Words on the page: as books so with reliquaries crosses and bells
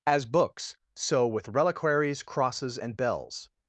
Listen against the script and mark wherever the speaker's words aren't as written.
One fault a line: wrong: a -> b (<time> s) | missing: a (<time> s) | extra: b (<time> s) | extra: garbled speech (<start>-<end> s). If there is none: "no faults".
no faults